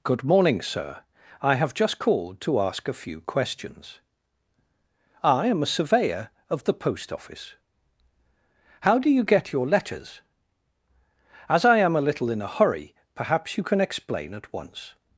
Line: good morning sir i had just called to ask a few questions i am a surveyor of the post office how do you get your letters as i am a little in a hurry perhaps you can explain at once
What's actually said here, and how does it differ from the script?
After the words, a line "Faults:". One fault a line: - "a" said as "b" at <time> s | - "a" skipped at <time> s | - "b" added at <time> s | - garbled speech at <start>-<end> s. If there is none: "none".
good morning sir i have just called to ask a few questions i am a surveyor of the post office how do you get your letters as i am a little in a hurry perhaps you can explain at once
Faults:
- "had" said as "have" at 1.6 s